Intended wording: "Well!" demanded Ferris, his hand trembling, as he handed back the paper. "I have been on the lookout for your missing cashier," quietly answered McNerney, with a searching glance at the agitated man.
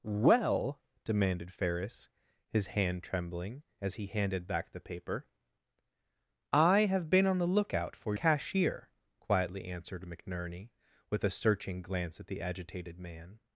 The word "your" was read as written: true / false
false